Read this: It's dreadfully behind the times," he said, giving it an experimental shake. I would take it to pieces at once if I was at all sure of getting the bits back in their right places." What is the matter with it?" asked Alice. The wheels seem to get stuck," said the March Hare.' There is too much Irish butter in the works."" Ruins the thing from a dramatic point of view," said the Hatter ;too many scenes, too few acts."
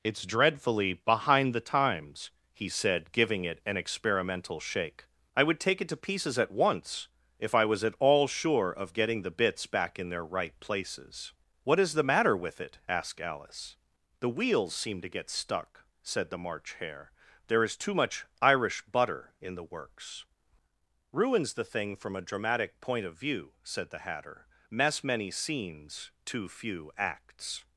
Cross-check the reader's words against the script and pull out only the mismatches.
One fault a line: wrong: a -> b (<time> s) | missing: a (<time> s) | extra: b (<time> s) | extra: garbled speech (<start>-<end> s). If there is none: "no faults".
wrong: too -> mess (24.7 s)